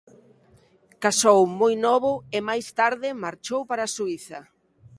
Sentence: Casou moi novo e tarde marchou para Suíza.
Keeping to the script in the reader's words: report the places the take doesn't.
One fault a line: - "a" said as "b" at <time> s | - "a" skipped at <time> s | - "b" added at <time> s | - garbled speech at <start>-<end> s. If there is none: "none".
- "máis" added at 2.5 s